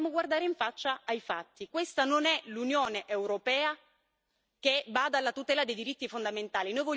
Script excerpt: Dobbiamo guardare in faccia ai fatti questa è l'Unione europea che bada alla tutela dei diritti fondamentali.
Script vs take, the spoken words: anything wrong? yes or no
yes